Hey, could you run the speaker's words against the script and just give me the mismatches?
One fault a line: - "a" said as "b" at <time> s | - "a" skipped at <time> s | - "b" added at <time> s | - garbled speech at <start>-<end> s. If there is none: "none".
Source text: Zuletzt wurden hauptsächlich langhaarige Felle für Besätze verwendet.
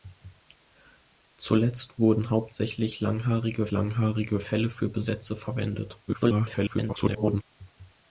- "langhaarige" added at 3.7 s
- garbled speech at 6.1-7.4 s